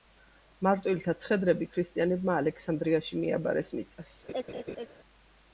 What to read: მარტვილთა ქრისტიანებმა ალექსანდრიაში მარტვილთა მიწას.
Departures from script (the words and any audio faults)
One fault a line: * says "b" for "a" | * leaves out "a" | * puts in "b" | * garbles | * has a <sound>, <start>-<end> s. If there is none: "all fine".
* puts in "ცხედრები"
* says "მიაბარეს" for "მარტვილთა"
* has a laugh, 4.3-4.9 s